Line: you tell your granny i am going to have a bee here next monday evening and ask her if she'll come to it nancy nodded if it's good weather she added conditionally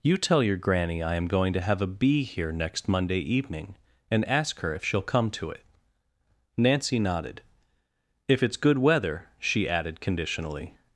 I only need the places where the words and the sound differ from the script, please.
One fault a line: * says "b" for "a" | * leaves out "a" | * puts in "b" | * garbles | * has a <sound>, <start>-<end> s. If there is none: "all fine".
all fine